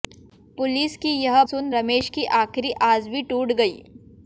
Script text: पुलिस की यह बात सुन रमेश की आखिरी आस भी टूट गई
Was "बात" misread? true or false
true